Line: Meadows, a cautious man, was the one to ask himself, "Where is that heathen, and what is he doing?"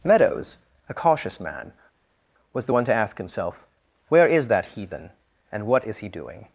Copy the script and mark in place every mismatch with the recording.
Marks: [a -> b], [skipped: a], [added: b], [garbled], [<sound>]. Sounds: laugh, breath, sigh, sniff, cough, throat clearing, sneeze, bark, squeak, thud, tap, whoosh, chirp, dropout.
Meadows, a cautious man, was the one to ask himself, "Where is that heathen, and what is he doing?"